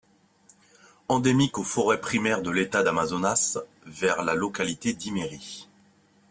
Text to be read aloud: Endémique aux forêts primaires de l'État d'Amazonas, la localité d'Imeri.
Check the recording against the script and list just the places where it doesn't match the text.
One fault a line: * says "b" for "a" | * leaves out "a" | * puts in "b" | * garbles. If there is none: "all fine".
* puts in "vers"